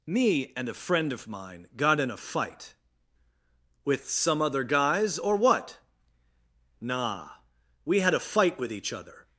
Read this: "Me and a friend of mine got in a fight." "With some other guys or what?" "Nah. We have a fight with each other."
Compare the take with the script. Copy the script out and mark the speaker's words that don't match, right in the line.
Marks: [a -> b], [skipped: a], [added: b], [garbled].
"Me and a friend of mine got in a fight." "With some other guys or what?" "Nah. We [have -> had] a fight with each other."